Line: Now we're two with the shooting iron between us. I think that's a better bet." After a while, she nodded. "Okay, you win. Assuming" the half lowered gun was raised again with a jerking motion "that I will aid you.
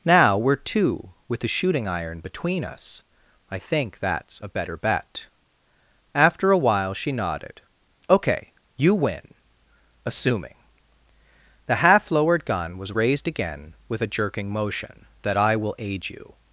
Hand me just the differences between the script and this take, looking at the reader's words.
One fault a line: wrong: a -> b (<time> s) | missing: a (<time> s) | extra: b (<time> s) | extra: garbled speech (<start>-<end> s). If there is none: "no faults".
no faults